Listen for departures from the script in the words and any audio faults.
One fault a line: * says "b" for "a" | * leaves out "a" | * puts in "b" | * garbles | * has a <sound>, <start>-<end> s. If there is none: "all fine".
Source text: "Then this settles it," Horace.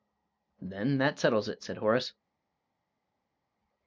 * says "that" for "this"
* puts in "said"